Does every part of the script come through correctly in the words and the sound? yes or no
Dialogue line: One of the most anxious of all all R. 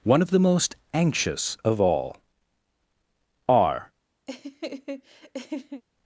no